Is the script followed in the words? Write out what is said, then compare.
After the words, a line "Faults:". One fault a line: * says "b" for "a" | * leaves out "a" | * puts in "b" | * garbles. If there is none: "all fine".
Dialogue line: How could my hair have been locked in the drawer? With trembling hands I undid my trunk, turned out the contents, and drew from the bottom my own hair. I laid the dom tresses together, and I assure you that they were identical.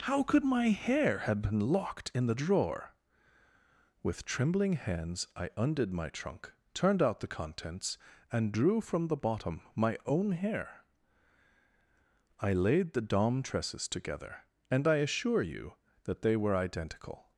How could my hair have been locked in the drawer? With trembling hands I undid my trunk, turned out the contents, and drew from the bottom my own hair. I laid the dom tresses together, and I assure you that they were identical.
Faults:
all fine